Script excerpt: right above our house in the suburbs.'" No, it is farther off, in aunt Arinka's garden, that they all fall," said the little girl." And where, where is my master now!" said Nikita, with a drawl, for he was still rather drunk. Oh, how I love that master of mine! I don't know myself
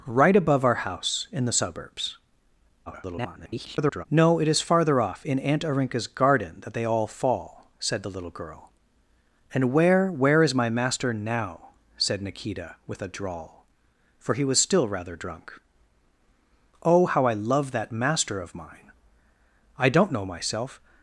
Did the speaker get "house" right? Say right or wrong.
right